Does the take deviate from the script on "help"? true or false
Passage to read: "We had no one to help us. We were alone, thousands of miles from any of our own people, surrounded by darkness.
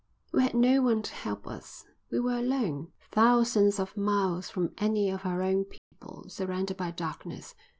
false